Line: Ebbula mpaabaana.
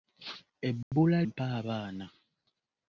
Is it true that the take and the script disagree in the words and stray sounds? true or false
true